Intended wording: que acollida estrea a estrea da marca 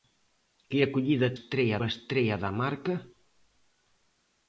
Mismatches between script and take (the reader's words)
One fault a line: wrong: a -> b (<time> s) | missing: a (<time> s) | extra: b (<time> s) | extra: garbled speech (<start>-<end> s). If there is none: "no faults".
no faults